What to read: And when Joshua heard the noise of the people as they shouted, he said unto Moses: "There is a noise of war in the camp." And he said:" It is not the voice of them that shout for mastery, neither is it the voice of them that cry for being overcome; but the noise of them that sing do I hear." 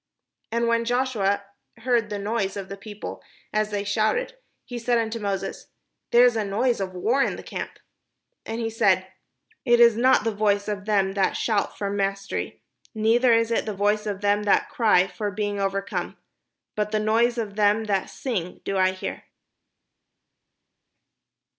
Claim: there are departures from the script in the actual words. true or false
false